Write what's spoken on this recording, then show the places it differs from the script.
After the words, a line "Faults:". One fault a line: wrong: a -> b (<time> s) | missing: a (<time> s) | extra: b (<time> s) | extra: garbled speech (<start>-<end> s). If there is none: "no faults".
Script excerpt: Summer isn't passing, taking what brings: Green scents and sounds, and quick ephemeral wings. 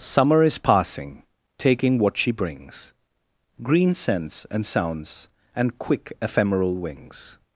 Summer is passing, taking what she brings: Green scents and sounds, and quick ephemeral wings.
Faults:
wrong: isn't -> is (0.4 s)
extra: she (2.2 s)